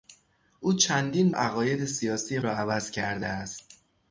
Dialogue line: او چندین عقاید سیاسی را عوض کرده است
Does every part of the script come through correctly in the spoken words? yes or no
yes